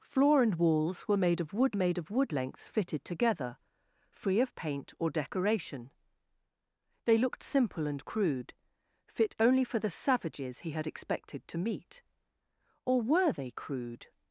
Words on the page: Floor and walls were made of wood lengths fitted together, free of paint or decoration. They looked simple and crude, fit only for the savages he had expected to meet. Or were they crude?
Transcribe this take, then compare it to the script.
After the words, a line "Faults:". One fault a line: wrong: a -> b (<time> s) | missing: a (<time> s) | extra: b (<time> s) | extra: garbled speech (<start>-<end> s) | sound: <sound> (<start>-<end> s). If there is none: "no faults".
Floor and walls were made of wood made of wood lengths fitted together, free of paint or decoration. They looked simple and crude, fit only for the savages he had expected to meet. Or were they crude?
Faults:
extra: made of wood (1.7 s)